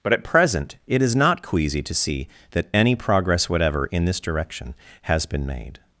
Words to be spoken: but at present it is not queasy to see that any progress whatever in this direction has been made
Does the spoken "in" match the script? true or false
true